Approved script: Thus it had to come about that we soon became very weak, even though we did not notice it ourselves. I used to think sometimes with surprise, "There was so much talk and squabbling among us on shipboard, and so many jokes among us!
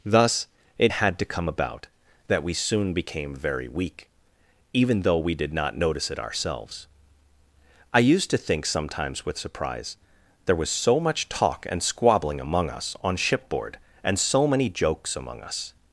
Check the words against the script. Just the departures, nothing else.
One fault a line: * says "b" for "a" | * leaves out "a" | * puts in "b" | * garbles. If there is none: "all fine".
all fine